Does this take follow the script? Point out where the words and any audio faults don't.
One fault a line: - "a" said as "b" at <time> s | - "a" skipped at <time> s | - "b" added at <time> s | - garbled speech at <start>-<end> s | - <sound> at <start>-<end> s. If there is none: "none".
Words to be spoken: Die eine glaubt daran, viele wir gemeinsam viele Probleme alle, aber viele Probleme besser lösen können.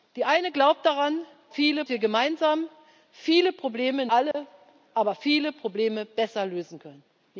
- dropout at 4.3-4.3 s